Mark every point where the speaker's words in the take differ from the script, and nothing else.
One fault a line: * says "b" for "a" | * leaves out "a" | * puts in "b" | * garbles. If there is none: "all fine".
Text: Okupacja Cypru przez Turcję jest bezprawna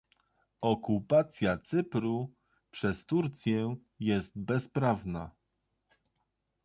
all fine